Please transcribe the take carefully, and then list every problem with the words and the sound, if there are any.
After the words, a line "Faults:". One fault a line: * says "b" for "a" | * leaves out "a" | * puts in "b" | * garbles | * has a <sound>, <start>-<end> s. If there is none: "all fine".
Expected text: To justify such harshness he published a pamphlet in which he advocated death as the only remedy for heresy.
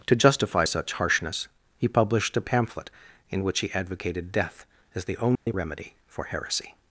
To justify such harshness he published a pamphlet in which he advocated death as the only remedy for heresy.
Faults:
* has a dropout, 5.4-5.5 s